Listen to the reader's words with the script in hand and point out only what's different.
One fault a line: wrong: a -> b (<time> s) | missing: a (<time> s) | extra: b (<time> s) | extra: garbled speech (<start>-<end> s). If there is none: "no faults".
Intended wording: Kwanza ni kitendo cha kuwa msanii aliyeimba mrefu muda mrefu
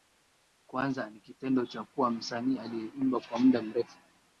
wrong: mrefu -> kwa (3.2 s)